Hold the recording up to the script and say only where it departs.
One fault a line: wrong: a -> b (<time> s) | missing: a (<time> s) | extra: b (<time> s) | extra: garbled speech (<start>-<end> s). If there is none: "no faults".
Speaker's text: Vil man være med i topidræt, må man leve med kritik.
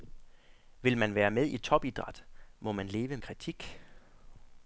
missing: med (3.2 s)